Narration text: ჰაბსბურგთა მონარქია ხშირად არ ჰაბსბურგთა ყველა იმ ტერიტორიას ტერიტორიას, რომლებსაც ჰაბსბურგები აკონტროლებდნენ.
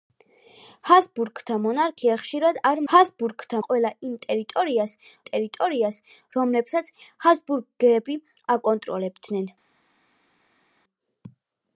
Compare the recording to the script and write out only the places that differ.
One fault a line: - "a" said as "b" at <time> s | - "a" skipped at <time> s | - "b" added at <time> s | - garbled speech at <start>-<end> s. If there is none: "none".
none